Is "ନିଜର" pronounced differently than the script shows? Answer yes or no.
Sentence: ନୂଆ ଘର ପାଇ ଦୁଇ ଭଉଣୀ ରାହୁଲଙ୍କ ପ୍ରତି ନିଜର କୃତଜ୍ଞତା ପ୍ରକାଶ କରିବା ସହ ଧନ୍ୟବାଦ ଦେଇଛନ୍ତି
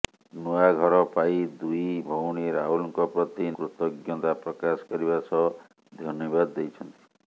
yes